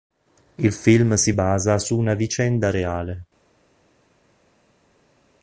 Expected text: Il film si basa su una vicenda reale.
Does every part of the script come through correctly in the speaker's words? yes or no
yes